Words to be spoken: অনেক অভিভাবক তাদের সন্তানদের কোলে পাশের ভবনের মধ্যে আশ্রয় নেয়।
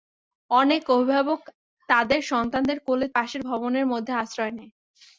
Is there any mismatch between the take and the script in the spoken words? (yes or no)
no